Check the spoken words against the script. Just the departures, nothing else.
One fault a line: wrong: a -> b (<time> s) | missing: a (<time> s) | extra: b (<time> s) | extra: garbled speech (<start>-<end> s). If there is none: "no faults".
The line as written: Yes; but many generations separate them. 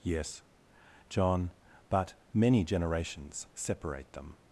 extra: john (1.1 s)